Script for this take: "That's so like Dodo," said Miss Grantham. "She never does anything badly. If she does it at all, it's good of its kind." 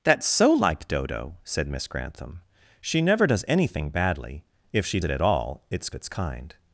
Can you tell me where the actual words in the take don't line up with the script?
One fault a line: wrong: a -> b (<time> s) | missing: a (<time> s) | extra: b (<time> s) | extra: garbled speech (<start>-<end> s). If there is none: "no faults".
missing: does (5.0 s)
missing: good of (5.9 s)